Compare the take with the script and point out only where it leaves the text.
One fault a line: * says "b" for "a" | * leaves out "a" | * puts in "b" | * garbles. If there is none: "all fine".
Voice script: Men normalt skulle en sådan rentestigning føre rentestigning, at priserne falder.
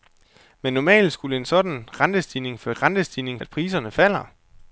all fine